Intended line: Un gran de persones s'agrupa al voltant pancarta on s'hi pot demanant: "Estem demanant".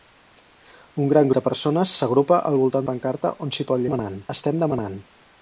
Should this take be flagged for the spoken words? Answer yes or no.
no